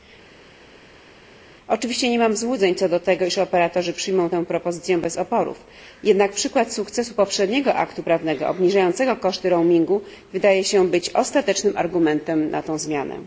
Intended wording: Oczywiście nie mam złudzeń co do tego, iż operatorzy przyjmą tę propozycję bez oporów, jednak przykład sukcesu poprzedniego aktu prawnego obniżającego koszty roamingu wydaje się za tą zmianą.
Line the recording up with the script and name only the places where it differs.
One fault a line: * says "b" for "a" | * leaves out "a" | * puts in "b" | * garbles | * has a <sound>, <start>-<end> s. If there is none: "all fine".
* puts in "być ostatecznym argumentem"